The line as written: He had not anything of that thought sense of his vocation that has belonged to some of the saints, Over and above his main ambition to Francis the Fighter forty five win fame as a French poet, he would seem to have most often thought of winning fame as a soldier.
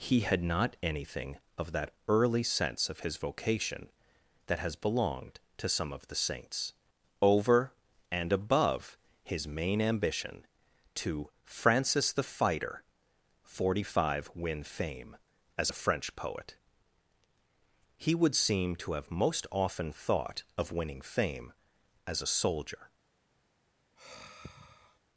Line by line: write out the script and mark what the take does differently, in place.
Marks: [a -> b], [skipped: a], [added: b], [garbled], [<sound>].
He had not anything of that [thought -> early] sense of his vocation that has belonged to some of the saints, Over and above his main ambition to Francis the Fighter forty five win fame as a French poet, he would seem to have most often thought of winning fame as a soldier. [sigh]